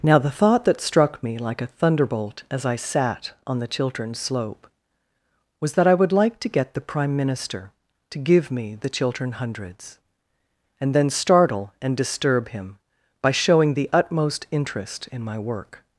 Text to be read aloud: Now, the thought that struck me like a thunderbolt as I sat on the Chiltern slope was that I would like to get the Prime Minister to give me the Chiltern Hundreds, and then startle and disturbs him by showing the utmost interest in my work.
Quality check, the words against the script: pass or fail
fail